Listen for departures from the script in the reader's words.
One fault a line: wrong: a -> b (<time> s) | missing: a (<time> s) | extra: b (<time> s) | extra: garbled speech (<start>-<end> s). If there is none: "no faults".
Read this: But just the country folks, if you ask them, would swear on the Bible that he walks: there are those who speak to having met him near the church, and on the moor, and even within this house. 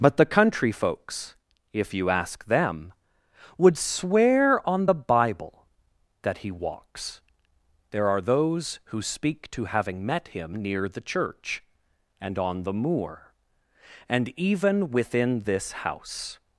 missing: just (0.2 s)